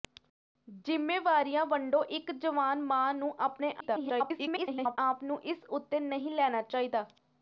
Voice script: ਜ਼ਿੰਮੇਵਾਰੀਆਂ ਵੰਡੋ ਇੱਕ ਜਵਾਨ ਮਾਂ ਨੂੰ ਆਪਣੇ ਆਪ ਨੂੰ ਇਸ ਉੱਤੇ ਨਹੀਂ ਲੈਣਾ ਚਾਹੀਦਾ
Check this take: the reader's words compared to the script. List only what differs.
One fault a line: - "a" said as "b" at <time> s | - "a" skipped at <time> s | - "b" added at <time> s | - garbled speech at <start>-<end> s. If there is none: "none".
- garbled speech at 3.8-5.0 s